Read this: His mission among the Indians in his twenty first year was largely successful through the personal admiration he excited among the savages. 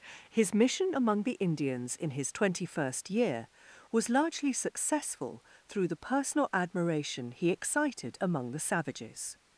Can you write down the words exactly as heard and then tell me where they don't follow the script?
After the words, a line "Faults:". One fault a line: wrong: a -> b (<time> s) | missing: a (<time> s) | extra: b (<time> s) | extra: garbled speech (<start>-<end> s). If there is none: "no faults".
His mission among the Indians in his twenty first year was largely successful through the personal admiration he excited among the savages.
Faults:
no faults